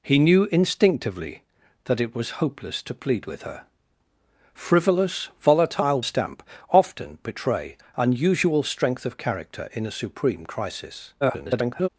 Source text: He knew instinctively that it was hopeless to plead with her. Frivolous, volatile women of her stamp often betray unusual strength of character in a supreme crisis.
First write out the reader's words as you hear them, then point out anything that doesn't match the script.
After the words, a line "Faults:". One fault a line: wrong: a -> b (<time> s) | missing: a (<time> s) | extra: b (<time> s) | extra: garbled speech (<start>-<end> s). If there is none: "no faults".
He knew instinctively that it was hopeless to plead with her. Frivolous, volatile stamp often betray unusual strength of character in a supreme crisis. [garbled]
Faults:
missing: women of her (6.0 s)
extra: garbled speech (11.2-11.9 s)